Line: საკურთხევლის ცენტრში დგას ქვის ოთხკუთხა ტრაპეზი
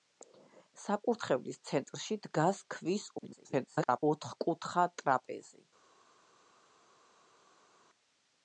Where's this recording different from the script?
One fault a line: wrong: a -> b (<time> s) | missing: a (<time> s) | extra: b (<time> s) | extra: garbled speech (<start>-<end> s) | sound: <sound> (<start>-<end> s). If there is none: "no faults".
extra: garbled speech (3.2-4.0 s)